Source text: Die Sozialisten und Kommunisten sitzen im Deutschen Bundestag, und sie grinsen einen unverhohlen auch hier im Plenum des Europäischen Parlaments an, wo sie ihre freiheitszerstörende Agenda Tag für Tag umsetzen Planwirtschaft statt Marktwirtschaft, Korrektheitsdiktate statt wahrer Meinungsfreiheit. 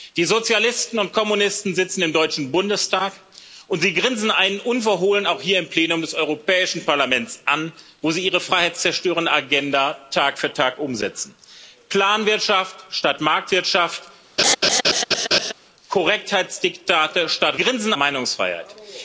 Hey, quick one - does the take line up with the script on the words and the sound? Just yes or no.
no